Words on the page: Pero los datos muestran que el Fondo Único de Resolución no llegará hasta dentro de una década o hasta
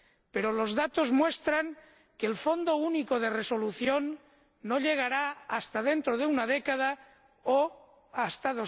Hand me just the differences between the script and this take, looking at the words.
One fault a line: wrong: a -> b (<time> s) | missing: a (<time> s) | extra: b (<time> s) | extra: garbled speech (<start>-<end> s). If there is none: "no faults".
no faults